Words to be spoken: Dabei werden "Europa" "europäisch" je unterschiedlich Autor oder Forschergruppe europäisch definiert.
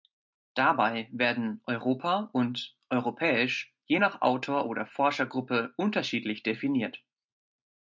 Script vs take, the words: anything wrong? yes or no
yes